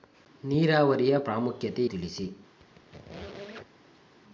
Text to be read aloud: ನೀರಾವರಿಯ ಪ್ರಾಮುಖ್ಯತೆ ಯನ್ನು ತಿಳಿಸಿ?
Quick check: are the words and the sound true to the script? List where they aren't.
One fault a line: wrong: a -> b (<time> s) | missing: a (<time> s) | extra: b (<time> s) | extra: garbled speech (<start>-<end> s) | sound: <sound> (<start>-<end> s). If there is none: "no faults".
missing: ಯನ್ನು (1.9 s)
sound: squeak (2.6-4.1 s)